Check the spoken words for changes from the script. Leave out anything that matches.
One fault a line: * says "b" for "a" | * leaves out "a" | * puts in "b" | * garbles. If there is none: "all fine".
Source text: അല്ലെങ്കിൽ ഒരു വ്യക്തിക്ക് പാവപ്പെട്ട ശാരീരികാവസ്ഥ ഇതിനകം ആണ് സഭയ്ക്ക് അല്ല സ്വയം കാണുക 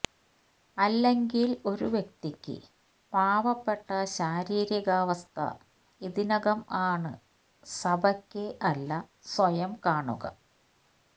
all fine